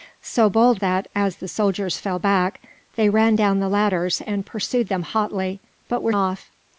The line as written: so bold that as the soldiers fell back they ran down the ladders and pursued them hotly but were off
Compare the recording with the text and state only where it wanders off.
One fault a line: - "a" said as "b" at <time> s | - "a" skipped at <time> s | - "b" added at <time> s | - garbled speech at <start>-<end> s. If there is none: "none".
none